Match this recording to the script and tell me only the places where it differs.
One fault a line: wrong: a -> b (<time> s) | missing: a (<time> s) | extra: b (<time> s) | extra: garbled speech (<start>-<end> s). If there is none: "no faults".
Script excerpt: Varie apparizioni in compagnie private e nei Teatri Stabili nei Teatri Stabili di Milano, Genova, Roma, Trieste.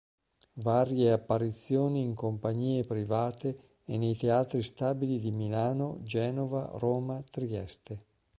missing: nei Teatri Stabili (5.2 s)